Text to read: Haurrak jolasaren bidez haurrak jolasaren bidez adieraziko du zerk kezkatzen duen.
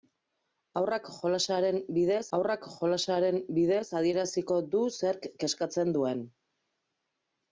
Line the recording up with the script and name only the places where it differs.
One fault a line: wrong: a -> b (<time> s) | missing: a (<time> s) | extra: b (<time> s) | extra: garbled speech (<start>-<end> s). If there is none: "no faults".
no faults